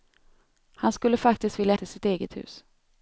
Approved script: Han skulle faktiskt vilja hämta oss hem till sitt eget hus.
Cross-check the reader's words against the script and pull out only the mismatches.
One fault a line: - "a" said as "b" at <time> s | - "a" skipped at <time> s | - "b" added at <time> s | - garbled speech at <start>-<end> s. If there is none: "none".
- "hämta oss hem" skipped at 1.8 s